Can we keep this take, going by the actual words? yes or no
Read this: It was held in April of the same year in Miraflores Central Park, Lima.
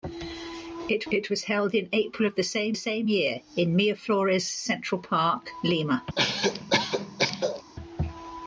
no